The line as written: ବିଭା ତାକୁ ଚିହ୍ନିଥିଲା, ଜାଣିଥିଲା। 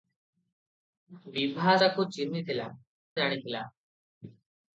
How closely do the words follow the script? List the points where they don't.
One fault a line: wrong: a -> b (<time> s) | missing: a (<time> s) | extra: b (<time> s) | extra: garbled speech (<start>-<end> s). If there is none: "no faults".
no faults